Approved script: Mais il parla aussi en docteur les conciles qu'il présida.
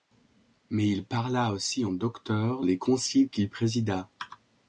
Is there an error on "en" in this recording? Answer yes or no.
no